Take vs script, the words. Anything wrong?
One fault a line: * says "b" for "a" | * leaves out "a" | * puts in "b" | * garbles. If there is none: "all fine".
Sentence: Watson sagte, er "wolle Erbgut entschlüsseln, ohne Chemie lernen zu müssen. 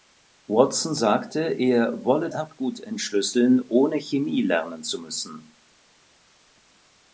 all fine